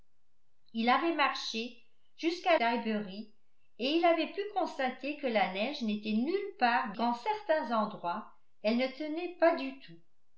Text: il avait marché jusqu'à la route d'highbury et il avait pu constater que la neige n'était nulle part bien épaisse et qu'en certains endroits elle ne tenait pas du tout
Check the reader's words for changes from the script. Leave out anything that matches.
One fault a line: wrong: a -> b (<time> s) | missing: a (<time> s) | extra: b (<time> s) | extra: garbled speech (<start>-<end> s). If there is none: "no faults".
missing: la route (2.6 s)
missing: bien épaisse et (6.9 s)